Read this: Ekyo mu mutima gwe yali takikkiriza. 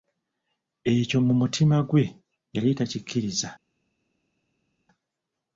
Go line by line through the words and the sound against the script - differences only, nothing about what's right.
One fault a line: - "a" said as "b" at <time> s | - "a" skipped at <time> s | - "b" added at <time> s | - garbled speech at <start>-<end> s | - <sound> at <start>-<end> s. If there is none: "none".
none